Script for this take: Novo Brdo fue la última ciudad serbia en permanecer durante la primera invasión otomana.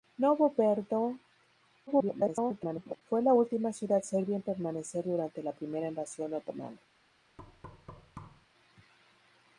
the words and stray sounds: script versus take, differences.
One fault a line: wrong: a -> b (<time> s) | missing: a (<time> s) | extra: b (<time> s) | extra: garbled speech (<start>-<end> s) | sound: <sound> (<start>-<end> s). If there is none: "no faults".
extra: garbled speech (1.9-3.0 s)
sound: thud (7.4-8.5 s)